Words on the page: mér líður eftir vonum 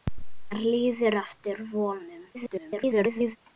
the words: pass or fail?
fail